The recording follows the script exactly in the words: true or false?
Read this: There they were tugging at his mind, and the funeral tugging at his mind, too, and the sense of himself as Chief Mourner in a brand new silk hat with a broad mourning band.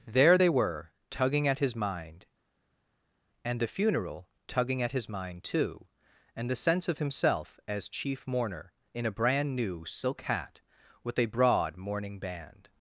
true